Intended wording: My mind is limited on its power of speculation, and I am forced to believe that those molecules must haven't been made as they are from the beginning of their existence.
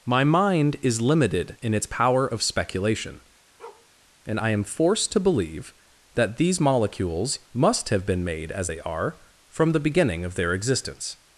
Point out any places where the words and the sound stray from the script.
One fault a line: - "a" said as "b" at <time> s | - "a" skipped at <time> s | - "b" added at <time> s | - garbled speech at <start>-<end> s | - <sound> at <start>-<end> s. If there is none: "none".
- "on" said as "in" at 1.6 s
- bark at 3.6-3.9 s
- "those" said as "these" at 6.4 s
- "haven't" said as "have" at 7.9 s